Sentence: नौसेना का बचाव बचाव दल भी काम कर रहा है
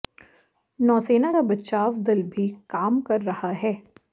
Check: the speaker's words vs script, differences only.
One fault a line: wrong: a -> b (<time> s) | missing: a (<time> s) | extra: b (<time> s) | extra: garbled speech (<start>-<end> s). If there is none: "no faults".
missing: बचाव (2.0 s)